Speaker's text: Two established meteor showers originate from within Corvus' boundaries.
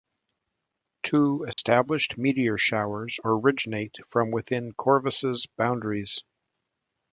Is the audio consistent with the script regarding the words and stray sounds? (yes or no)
no